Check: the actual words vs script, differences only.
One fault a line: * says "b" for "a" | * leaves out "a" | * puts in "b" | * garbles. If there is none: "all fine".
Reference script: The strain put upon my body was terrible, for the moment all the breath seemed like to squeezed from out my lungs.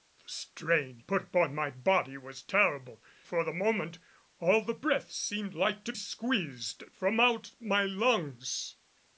all fine